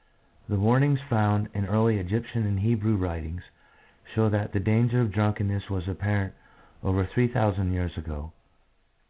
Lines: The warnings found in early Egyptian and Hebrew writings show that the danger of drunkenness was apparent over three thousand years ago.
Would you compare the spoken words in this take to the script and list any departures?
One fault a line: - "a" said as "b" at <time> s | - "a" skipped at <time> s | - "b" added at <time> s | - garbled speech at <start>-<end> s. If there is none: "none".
none